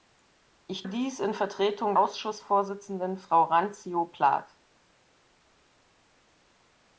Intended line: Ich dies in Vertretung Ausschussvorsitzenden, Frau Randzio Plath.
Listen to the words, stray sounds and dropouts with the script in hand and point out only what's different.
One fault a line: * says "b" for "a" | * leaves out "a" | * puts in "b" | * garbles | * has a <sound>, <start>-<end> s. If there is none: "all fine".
all fine